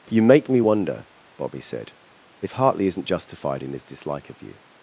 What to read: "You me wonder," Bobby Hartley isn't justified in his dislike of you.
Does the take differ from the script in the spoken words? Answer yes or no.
yes